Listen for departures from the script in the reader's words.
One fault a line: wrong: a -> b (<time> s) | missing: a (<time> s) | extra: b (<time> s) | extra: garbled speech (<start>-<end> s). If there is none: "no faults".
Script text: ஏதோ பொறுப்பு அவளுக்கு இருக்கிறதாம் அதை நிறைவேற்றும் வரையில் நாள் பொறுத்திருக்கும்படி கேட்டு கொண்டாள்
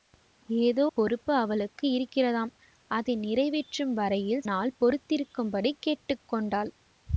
no faults